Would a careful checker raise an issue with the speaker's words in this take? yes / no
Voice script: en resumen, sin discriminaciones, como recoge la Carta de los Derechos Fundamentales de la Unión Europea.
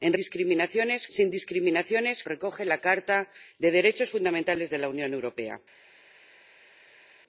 yes